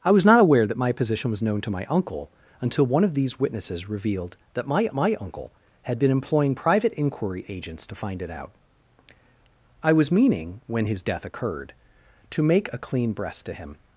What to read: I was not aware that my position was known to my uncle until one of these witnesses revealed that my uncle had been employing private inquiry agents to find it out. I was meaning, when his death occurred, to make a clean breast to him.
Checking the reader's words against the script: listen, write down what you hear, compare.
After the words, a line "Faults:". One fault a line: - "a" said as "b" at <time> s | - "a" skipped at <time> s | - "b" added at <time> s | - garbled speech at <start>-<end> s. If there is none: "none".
I was not aware that my position was known to my uncle until one of these witnesses revealed that my my uncle had been employing private inquiry agents to find it out. I was meaning, when his death occurred, to make a clean breast to him.
Faults:
- "my" added at 4.9 s